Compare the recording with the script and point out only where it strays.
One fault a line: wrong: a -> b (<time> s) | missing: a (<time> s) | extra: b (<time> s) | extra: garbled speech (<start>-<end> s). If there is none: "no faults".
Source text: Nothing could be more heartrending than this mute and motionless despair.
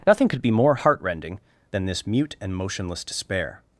no faults